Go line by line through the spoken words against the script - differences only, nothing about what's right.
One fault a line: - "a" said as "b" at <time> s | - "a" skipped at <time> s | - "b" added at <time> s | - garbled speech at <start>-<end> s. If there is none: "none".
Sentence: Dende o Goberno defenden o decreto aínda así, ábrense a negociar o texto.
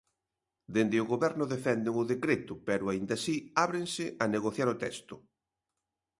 - "pero" added at 2.7 s